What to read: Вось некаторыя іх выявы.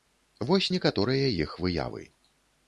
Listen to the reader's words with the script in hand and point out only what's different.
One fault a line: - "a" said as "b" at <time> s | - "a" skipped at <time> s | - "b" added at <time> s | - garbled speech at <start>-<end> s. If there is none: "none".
none